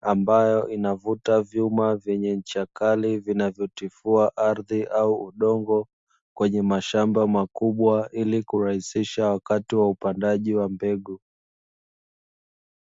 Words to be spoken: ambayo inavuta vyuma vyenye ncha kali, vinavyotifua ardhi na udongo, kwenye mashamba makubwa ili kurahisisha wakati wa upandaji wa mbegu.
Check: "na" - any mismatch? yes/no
yes